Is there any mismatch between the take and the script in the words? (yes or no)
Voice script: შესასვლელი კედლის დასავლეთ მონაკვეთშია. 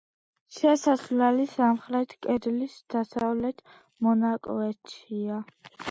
yes